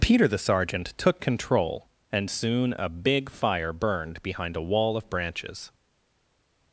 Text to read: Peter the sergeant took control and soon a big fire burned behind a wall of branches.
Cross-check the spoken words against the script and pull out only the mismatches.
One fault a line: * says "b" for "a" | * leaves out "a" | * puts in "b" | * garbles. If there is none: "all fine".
all fine